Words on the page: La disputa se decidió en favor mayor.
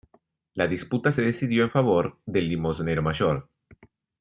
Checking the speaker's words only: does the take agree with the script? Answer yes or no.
no